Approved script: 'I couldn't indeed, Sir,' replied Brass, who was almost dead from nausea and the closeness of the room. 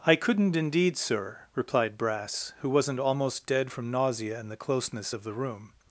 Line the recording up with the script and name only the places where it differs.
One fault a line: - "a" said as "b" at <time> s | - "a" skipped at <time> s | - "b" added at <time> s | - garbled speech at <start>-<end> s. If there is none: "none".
- "was" said as "wasn't" at 2.7 s